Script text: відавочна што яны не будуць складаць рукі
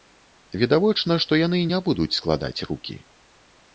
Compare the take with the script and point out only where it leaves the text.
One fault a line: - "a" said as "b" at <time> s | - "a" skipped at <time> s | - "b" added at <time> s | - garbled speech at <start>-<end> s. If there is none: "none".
none